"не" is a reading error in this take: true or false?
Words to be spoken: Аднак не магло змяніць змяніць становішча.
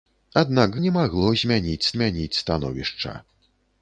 false